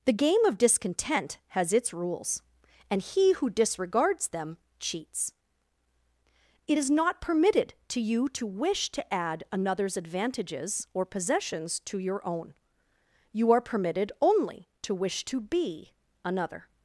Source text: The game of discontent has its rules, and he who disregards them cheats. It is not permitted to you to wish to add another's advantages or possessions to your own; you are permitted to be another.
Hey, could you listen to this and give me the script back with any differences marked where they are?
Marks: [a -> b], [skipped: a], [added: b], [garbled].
The game of discontent has its rules, and he who disregards them cheats. It is not permitted to you to wish to add another's advantages or possessions to your own; you are permitted [added: only to wish] to be another.